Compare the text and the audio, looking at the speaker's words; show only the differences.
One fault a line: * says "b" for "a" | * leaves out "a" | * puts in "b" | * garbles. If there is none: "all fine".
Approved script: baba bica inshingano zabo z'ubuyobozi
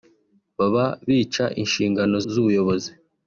* leaves out "zabo"